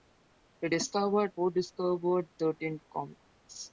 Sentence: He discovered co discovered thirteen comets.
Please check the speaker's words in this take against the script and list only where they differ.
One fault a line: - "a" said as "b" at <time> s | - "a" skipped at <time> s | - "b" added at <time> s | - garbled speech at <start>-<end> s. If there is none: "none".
none